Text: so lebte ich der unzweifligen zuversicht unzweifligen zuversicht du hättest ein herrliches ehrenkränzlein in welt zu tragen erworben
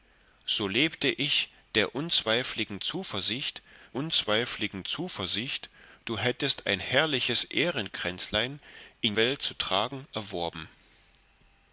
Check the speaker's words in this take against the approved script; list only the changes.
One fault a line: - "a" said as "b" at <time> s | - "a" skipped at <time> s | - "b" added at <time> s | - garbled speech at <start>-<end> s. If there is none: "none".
none